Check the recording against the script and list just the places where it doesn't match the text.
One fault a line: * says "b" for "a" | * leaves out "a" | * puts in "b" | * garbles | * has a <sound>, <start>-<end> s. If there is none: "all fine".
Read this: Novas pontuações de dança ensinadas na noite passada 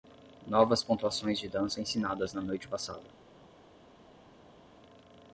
all fine